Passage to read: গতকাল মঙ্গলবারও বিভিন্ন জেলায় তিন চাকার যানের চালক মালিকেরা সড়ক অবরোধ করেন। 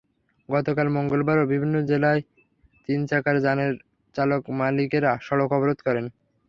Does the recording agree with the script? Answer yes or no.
yes